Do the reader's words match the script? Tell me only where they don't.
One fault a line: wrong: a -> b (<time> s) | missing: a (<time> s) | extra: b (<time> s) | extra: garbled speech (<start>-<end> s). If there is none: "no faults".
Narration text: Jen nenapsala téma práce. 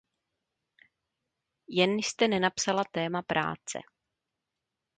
extra: jste (1.9 s)